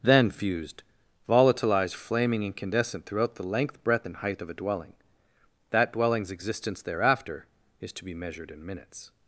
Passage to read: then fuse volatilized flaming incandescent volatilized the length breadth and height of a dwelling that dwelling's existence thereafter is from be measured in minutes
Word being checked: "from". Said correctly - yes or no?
no